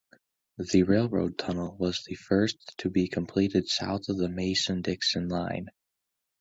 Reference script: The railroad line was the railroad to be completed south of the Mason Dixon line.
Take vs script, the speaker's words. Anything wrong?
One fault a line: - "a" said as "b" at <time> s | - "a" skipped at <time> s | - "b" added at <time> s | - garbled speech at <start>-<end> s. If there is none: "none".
- "line" said as "tunnel" at 1.4 s
- "railroad" said as "first" at 2.1 s